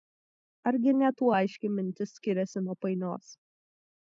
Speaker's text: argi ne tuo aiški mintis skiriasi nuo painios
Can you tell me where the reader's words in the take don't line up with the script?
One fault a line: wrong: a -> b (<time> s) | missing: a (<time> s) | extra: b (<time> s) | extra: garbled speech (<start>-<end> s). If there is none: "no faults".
no faults